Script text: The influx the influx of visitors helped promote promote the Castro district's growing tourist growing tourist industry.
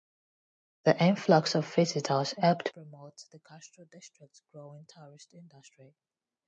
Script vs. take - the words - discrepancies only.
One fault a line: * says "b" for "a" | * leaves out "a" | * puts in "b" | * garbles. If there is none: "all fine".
* leaves out "the influx"
* leaves out "promote"
* leaves out "growing tourist"